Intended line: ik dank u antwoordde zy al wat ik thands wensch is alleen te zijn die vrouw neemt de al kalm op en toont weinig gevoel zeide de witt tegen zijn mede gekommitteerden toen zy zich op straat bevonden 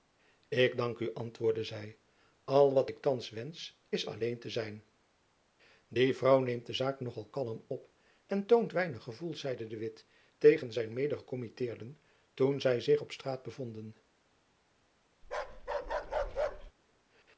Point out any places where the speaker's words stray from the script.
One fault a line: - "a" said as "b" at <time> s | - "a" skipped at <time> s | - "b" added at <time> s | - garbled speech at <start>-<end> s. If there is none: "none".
- "zaak nog" added at 6.7 s